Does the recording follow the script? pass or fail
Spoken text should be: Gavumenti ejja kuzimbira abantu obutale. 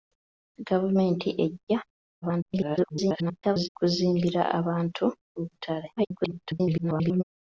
fail